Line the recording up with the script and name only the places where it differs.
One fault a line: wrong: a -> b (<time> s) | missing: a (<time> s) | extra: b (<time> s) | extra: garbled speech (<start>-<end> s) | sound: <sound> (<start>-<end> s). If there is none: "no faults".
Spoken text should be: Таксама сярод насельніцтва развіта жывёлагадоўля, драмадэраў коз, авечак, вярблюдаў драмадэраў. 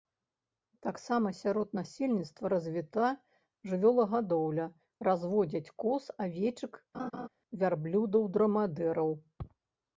wrong: драмадэраў -> разводзяць (5.1 s)
sound: laugh (6.9-7.3 s)